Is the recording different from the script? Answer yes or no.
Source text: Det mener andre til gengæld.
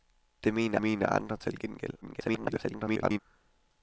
yes